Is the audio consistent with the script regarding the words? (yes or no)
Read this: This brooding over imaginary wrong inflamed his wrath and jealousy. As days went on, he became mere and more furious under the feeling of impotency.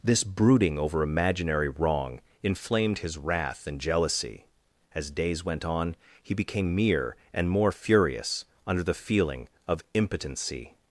yes